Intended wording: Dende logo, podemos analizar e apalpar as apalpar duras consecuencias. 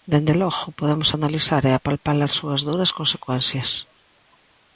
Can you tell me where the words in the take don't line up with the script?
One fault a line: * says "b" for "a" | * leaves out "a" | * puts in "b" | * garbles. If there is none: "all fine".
* says "súas" for "apalpar"